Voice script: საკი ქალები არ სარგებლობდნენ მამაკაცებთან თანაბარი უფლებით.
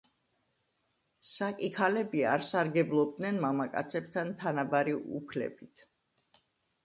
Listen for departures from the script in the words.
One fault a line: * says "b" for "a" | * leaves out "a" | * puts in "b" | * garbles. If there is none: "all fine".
all fine